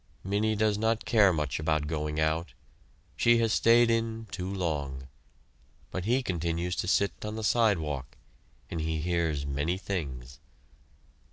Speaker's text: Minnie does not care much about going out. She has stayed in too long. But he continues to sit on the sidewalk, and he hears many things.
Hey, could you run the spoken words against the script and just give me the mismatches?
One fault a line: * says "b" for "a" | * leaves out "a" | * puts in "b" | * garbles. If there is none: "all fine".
all fine